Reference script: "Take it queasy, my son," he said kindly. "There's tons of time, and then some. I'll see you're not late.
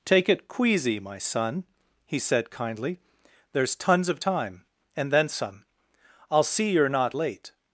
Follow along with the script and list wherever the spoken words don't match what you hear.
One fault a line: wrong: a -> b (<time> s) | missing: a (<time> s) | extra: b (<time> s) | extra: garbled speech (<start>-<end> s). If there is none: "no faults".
no faults